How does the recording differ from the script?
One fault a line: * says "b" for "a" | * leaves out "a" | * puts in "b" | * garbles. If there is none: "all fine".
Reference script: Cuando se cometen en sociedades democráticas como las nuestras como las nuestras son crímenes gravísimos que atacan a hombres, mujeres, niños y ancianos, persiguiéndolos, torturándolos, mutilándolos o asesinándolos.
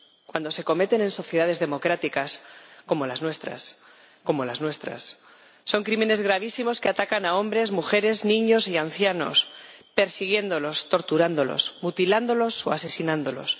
all fine